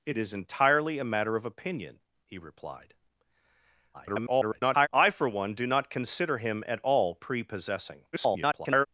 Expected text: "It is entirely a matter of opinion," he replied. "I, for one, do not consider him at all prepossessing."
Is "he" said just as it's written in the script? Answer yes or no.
yes